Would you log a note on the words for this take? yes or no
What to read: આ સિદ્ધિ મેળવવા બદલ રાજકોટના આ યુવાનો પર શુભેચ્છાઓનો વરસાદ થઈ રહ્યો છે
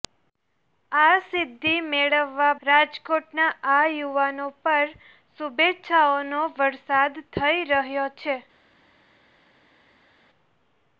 yes